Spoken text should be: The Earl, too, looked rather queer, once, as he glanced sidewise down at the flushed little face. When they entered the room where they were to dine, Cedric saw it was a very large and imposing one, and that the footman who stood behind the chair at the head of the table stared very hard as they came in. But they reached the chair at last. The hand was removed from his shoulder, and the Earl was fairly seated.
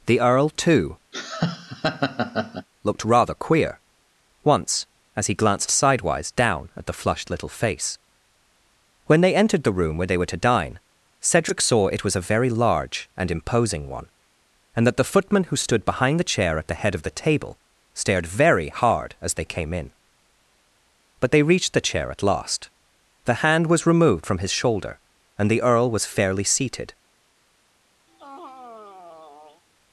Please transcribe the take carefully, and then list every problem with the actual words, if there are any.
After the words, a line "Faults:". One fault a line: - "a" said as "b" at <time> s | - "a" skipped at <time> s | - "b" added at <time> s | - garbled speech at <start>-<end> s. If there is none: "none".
The Earl, too, looked rather queer, once, as he glanced sidewise down at the flushed little face. When they entered the room where they were to dine, Cedric saw it was a very large and imposing one, and that the footman who stood behind the chair at the head of the table stared very hard as they came in. But they reached the chair at last. The hand was removed from his shoulder, and the Earl was fairly seated.
Faults:
none